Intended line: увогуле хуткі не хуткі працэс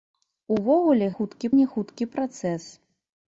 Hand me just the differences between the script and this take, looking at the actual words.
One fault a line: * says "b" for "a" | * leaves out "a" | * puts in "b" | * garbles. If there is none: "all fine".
all fine